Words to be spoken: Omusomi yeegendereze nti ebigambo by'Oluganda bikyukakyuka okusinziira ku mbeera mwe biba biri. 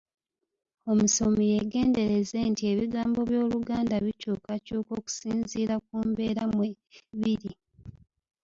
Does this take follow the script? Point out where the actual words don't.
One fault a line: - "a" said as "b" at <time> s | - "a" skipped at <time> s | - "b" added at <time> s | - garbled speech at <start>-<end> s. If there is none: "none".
- "biba" skipped at 6.7 s